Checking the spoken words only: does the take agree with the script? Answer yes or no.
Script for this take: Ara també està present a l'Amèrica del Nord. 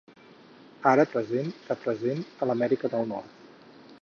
no